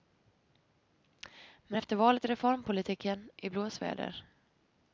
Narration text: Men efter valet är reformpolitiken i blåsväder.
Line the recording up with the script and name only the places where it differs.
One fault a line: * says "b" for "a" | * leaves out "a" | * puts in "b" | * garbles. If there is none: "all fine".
all fine